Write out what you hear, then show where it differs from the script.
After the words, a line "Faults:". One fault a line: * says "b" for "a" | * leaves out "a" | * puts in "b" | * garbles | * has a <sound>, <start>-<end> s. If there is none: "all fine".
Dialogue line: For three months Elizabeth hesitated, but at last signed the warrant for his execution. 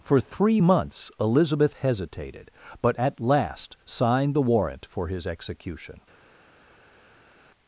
For three months Elizabeth hesitated, but at last signed the warrant for his execution.
Faults:
all fine